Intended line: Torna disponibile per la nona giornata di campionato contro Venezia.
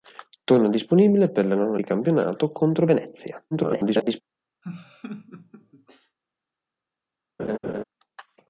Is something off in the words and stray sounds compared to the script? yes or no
yes